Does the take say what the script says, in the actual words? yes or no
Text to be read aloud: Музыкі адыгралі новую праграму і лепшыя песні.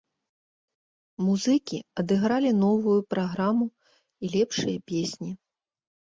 yes